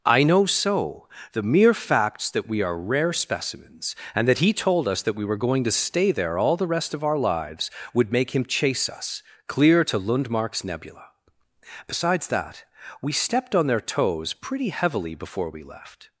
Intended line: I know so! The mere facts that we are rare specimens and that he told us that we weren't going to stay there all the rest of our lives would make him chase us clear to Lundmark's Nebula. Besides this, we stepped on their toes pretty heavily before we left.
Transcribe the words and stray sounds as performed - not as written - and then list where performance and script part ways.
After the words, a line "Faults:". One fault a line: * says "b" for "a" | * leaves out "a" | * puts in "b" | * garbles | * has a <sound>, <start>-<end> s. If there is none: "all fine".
I know so! The mere facts that we are rare specimens and that he told us that we were going to stay there all the rest of our lives would make him chase us clear to Lundmark's Nebula. Besides that, we stepped on their toes pretty heavily before we left.
Faults:
* says "were" for "weren't"
* says "that" for "this"